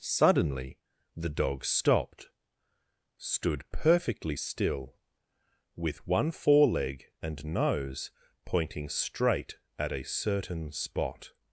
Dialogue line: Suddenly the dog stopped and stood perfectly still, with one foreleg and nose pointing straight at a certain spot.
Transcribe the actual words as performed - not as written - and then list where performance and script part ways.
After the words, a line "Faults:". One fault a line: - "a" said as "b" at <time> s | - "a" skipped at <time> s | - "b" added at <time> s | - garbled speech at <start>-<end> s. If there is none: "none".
Suddenly the dog stopped stood perfectly still, with one foreleg and nose pointing straight at a certain spot.
Faults:
- "and" skipped at 2.3 s